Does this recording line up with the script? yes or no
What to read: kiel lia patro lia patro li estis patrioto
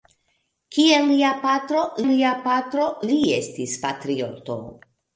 yes